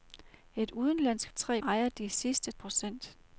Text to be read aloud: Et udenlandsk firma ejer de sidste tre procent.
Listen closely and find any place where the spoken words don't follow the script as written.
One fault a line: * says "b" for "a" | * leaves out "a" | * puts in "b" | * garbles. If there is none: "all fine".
* says "tre" for "firma"
* leaves out "tre"